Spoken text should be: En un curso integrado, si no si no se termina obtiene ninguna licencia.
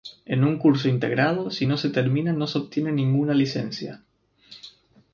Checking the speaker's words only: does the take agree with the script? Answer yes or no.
no